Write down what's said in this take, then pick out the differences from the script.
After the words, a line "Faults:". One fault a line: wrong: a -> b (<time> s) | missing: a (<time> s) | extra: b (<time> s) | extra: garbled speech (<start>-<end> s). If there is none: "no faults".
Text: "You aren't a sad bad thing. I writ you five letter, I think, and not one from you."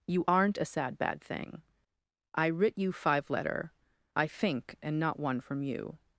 "You aren't a sad bad thing. I writ you five letter, I think, and not one from you."
Faults:
no faults